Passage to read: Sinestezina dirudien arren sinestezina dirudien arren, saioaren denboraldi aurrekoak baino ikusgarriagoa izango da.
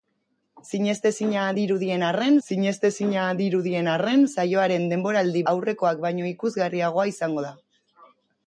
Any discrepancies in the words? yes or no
no